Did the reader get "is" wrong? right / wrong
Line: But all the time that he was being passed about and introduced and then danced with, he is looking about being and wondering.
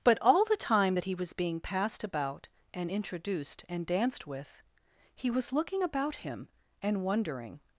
wrong